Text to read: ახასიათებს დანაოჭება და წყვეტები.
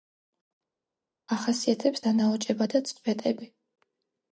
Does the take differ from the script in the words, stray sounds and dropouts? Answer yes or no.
no